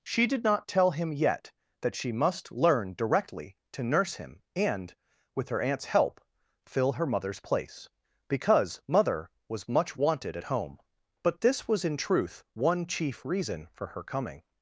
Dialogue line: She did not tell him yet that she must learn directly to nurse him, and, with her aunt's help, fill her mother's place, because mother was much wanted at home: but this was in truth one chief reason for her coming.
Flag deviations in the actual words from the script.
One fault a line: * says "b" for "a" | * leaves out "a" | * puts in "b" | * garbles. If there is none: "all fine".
all fine